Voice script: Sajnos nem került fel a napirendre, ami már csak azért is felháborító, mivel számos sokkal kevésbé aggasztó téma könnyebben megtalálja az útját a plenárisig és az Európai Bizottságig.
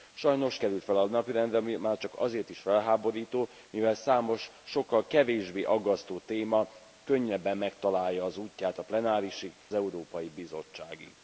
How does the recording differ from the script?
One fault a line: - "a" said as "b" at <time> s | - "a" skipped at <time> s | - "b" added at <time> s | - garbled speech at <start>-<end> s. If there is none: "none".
- "nem" skipped at 0.6 s
- "és az" skipped at 9.5 s